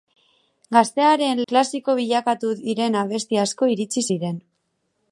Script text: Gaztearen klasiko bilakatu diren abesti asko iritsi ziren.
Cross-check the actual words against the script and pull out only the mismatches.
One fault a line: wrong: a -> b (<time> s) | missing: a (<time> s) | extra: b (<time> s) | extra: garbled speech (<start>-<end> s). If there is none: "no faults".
no faults